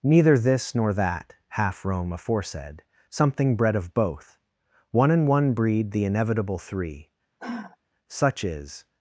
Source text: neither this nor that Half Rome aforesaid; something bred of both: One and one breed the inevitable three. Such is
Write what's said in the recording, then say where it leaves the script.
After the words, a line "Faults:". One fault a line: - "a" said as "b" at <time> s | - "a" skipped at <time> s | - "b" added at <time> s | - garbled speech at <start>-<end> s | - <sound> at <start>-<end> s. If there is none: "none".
neither this nor that Half Rome aforesaid; something bred of both: One and one breed the inevitable three. Such is
Faults:
- sigh at 7.4-7.8 s